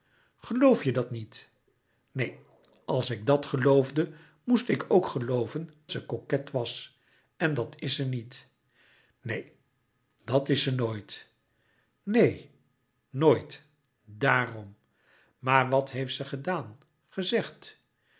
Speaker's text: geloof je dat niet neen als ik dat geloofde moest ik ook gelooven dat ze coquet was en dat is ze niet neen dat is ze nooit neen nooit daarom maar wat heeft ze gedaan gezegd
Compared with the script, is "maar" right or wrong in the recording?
right